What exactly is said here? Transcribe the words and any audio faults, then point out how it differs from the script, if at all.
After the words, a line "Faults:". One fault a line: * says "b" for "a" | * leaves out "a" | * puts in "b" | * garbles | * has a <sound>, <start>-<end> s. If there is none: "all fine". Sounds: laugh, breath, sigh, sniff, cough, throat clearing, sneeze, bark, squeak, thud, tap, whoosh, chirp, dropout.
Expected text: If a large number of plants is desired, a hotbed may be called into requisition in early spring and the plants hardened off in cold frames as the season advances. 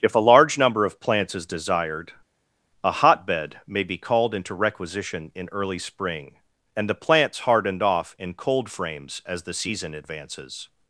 If a large number of plants is desired, a hotbed may be called into requisition in early spring and the plants hardened off in cold frames as the season advances.
Faults:
all fine